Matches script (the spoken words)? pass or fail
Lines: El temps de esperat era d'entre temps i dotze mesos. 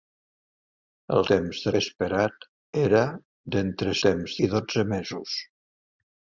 pass